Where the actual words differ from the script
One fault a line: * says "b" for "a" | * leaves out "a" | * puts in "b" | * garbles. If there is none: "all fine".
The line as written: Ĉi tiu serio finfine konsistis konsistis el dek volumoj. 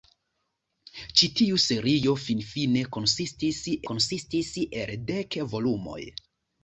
all fine